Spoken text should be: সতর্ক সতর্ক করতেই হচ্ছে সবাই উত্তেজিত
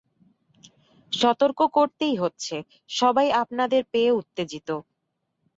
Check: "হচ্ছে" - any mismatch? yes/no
no